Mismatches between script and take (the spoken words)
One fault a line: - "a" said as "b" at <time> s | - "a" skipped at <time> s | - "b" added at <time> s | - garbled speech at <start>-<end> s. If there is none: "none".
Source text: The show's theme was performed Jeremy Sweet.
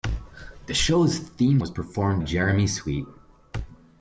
none